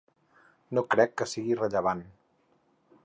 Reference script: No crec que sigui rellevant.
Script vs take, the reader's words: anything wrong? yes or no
no